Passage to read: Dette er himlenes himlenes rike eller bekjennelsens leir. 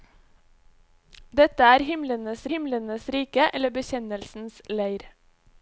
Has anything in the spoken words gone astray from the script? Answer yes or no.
no